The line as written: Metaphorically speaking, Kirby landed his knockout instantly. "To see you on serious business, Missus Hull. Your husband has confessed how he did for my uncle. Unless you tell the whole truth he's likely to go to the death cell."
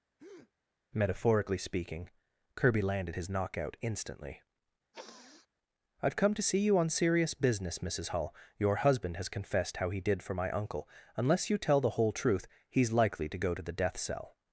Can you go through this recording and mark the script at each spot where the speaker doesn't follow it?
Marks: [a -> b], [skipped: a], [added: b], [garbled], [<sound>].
[breath] Metaphorically speaking, Kirby landed his knockout instantly. [sniff] [added: I've come] "To see you on serious business, Missus Hull. Your husband has confessed how he did for my uncle. Unless you tell the whole truth he's likely to go to the death cell."